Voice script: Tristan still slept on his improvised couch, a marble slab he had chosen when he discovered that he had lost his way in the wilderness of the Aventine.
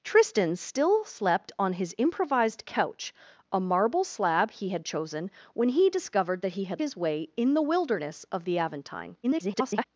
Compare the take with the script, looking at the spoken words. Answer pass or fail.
fail